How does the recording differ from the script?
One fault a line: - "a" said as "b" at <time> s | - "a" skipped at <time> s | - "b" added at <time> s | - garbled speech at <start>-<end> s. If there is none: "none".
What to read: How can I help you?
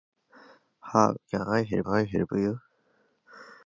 - "I help" added at 1.8 s